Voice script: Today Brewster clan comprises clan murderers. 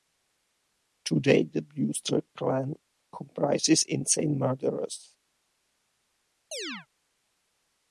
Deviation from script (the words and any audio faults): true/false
true